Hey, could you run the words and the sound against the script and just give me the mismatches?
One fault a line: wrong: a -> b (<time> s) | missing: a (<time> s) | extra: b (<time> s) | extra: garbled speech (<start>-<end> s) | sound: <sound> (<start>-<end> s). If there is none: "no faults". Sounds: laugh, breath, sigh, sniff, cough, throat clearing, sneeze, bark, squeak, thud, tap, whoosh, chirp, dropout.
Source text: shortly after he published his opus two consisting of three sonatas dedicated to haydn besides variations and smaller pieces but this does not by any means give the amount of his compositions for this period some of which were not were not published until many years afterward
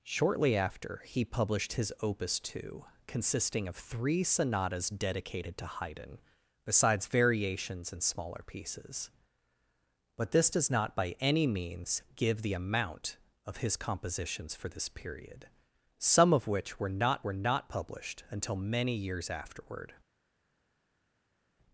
no faults